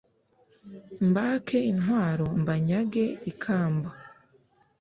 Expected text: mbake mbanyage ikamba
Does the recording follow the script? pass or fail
fail